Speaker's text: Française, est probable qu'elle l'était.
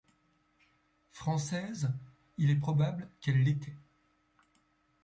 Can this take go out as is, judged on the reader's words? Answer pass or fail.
fail